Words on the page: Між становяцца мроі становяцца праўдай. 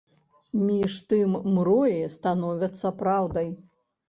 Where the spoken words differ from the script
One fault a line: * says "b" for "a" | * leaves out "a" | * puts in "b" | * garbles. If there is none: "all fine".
* says "тым" for "становяцца"